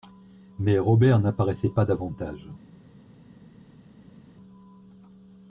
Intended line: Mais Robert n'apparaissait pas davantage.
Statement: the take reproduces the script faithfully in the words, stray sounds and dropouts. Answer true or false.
true